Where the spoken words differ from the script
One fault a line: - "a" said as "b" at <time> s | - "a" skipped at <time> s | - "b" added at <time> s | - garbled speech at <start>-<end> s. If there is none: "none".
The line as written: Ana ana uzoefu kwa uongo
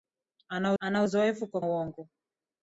none